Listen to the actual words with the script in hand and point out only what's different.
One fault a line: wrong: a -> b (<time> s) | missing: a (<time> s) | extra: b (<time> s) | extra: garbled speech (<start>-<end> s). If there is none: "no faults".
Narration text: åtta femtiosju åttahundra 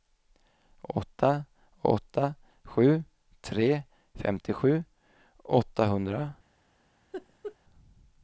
extra: åtta sju tre (1.8 s)